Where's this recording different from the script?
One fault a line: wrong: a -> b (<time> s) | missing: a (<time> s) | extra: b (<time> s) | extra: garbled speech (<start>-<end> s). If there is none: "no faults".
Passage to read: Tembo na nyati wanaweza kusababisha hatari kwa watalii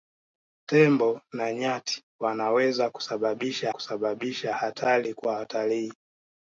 extra: kusababisha (3.7 s)